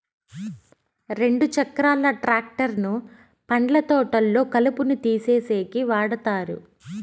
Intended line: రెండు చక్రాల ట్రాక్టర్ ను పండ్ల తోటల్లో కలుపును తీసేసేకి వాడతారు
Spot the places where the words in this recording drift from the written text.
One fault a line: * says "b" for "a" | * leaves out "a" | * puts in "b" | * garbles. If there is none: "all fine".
all fine